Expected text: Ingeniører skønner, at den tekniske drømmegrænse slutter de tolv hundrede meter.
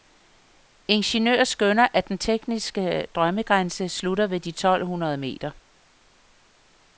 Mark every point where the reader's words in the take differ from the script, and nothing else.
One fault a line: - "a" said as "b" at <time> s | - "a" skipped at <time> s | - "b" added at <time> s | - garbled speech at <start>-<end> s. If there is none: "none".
- "ved" added at 4.3 s